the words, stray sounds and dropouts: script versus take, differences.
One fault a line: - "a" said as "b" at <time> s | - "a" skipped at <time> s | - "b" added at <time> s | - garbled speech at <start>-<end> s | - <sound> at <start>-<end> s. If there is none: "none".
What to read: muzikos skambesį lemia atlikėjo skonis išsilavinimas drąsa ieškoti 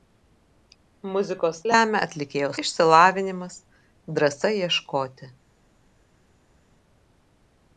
- "skambesį" skipped at 1.6 s
- "skonis" skipped at 2.5 s